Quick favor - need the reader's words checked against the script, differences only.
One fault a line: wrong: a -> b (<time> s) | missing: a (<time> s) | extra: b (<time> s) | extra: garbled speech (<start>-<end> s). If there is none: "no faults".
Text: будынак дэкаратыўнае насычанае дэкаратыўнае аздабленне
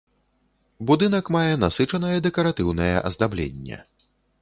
wrong: дэкаратыўнае -> мае (1.4 s)